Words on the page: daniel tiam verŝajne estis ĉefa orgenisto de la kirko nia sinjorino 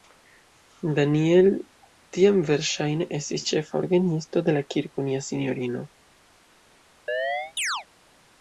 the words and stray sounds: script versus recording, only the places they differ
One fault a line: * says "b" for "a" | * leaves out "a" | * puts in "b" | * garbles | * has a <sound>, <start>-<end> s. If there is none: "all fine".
* has a chirp, 7.1-7.9 s